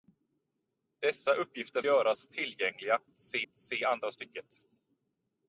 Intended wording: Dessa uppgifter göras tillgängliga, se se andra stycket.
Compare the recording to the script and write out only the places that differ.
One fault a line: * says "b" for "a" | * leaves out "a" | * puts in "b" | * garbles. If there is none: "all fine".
all fine